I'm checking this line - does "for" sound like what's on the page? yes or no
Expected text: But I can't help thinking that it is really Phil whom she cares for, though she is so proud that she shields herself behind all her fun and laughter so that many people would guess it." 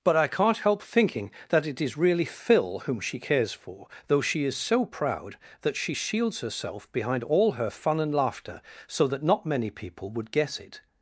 yes